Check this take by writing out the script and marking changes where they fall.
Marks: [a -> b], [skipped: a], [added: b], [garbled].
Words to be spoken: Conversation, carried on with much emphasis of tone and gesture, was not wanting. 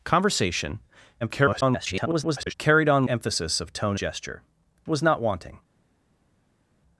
Conversation, [garbled] carried on [skipped: with much] emphasis of tone [skipped: and] gesture, was not wanting.